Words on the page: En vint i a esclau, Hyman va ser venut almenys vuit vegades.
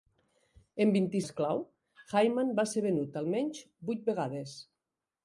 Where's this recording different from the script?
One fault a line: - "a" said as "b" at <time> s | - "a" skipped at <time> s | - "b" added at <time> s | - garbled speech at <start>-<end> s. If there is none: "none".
none